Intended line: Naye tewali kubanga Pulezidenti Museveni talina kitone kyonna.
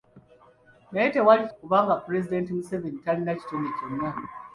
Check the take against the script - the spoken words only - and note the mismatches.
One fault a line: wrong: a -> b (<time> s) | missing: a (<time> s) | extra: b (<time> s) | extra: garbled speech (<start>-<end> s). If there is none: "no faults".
no faults